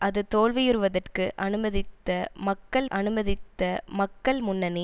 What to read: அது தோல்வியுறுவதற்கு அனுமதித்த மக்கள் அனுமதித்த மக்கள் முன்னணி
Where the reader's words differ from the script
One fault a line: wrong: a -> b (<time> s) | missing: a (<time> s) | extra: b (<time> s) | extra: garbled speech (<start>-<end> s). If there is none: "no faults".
no faults